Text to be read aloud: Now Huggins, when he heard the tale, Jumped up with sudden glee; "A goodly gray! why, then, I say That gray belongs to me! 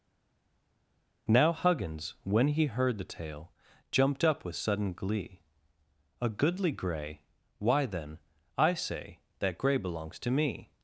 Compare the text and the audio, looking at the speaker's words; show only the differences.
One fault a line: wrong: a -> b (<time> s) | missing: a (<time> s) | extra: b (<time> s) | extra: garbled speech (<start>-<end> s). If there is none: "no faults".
no faults